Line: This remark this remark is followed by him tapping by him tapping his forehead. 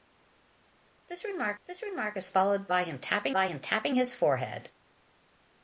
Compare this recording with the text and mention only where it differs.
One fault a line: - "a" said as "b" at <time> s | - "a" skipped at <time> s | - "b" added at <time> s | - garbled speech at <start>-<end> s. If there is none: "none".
none